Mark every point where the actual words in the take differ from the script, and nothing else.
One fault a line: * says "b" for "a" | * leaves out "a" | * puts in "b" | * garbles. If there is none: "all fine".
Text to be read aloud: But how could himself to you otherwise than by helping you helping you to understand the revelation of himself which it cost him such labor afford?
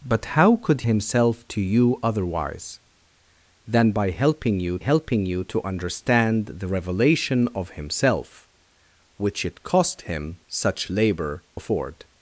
all fine